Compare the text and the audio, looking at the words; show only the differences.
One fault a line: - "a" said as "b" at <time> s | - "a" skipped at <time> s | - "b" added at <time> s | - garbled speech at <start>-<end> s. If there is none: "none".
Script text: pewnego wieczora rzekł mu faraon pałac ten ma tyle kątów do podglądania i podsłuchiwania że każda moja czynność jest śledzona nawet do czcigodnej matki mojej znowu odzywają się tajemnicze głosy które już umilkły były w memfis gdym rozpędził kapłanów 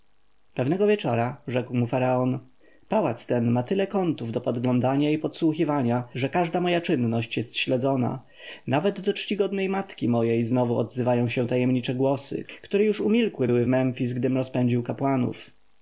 none